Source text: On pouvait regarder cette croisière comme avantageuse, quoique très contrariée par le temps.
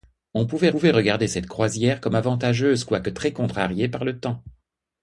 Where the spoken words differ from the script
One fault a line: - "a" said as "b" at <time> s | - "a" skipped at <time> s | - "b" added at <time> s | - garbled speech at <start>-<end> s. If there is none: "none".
- "pouvait" added at 0.7 s